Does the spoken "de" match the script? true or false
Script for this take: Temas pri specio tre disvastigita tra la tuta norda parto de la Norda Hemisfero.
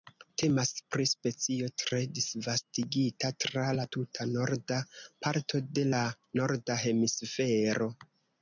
true